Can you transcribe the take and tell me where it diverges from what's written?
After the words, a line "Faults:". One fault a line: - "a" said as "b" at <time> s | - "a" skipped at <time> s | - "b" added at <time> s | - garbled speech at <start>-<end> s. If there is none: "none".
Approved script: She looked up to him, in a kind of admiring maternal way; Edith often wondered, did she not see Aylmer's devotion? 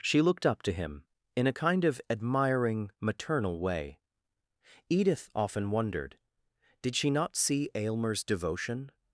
She looked up to him, in a kind of admiring maternal way; Edith often wondered, did she not see Aylmer's devotion?
Faults:
none